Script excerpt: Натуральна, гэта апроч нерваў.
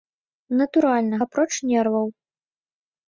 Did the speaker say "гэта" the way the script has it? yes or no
no